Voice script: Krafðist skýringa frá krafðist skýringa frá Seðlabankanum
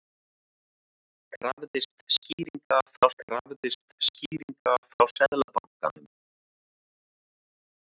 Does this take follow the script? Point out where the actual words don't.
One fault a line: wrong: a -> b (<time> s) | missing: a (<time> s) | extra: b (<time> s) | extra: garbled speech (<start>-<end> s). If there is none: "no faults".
no faults